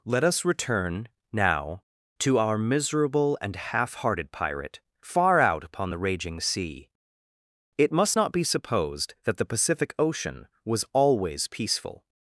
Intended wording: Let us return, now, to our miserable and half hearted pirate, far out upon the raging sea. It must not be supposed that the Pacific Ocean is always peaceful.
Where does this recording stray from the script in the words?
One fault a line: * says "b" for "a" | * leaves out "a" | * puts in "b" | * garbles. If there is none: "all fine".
* says "was" for "is"